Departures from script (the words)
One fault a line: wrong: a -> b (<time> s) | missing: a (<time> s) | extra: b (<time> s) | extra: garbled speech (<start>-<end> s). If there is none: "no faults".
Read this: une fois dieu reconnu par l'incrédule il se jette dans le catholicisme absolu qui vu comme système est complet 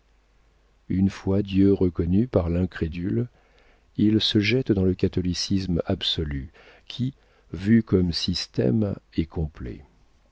no faults